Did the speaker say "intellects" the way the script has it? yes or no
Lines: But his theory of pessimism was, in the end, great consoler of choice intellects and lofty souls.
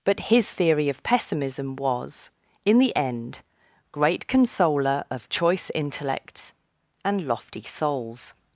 yes